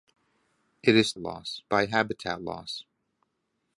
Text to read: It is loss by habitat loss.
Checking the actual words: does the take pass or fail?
pass